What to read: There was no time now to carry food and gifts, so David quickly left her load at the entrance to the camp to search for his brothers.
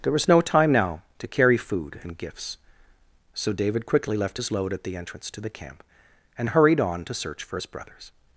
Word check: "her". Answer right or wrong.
wrong